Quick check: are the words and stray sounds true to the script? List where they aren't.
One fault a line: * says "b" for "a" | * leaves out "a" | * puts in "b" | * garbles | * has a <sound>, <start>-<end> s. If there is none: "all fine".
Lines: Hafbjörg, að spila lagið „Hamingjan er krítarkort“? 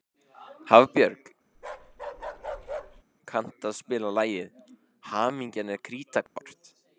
* has a bark, 1.5-3.0 s
* puts in "kanntu"
* has a dropout, 6.3-6.4 s